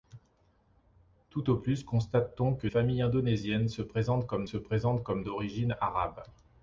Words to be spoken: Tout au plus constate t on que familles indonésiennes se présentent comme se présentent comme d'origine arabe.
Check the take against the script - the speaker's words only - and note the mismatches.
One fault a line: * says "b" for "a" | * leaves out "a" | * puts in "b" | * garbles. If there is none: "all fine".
all fine